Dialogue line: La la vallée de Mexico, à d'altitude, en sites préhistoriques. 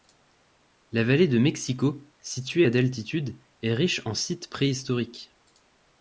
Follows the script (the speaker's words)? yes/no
no